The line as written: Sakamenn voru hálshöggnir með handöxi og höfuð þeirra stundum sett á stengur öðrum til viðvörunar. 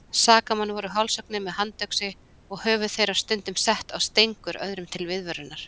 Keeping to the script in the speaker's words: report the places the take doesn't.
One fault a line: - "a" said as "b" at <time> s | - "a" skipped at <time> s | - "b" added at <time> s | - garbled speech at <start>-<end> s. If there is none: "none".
none